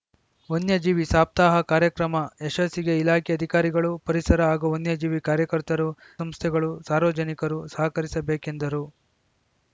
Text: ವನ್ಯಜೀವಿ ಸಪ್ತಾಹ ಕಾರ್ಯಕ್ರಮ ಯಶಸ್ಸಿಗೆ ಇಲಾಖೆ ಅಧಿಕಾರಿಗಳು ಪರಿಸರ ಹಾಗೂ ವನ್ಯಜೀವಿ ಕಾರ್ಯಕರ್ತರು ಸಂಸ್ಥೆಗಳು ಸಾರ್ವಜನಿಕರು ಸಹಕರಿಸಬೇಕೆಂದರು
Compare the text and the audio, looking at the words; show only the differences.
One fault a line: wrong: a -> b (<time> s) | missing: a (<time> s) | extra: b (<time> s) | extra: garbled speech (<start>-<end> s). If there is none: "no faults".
no faults